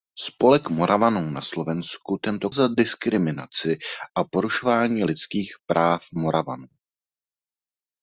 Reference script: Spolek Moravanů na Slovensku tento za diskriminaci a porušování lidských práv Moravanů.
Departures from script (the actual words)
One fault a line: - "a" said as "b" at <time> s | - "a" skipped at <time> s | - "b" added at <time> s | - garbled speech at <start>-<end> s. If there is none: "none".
none